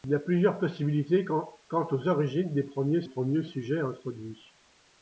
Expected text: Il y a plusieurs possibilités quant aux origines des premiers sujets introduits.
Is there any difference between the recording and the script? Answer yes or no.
yes